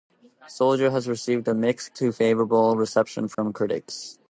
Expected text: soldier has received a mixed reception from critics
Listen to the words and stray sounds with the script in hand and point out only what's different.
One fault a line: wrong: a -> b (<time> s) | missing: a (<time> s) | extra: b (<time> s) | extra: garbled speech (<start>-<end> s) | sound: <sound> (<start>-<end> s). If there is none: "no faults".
extra: to favorable (1.9 s)
sound: dropout (3.3-3.4 s)